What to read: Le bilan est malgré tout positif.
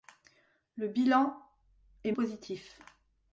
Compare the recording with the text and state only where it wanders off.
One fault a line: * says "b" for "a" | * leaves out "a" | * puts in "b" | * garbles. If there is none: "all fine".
* leaves out "malgré tout"